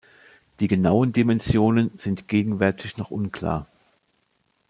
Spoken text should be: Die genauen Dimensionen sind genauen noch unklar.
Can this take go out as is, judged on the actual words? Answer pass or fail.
fail